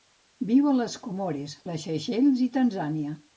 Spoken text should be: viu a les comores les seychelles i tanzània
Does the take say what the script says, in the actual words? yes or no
yes